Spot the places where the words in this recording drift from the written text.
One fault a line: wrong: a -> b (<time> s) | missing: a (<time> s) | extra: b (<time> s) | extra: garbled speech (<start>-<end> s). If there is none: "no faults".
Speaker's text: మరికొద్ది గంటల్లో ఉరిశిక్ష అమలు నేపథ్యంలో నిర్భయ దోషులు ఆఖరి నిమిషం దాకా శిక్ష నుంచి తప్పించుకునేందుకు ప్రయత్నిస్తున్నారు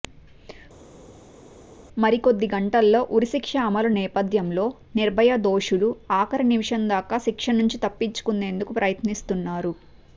no faults